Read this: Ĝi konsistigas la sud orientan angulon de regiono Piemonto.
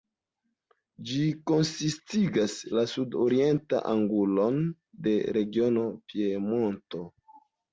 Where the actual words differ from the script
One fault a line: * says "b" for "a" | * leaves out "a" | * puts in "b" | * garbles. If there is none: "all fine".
all fine